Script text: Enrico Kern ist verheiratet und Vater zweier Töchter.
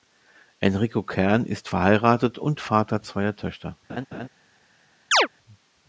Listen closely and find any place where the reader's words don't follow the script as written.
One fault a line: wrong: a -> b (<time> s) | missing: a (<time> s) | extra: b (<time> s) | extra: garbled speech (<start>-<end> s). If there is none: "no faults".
no faults